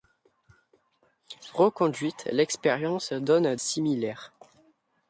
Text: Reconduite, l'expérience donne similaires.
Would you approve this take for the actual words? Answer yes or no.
yes